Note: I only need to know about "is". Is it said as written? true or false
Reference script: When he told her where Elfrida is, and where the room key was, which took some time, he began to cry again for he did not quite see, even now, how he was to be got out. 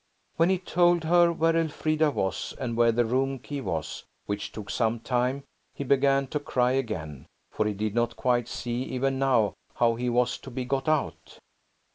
false